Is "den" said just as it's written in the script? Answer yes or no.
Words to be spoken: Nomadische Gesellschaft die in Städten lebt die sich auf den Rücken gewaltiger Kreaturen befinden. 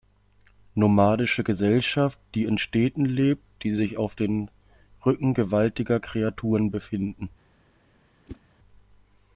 yes